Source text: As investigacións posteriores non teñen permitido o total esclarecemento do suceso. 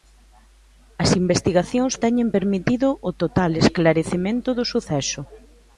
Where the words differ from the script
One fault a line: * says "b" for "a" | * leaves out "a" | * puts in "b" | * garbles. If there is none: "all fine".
* leaves out "posteriores non"